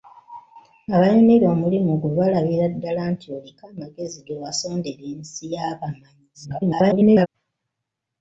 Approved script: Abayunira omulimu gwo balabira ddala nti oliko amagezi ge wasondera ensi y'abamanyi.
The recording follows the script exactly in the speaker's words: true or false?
false